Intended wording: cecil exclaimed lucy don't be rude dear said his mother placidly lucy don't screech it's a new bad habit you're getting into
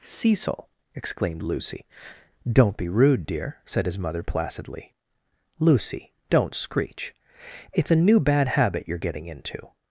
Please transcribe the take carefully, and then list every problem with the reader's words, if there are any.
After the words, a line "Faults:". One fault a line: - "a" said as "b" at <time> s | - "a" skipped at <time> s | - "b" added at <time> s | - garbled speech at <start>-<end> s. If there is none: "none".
cecil exclaimed lucy don't be rude dear said his mother placidly lucy don't screech it's a new bad habit you're getting into
Faults:
none